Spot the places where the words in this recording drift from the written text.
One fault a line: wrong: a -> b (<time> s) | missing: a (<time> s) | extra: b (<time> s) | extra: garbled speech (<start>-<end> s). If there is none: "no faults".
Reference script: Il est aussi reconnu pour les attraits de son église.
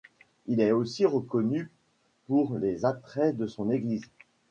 no faults